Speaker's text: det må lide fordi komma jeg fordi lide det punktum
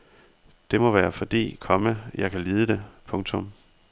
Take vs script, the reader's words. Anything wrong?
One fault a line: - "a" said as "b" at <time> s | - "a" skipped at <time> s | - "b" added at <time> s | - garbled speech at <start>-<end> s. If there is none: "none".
- "lide" said as "være" at 0.9 s
- "fordi" said as "kan" at 2.3 s